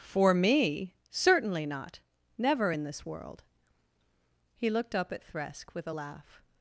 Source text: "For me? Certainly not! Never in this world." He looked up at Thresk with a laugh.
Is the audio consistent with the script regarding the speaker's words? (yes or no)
yes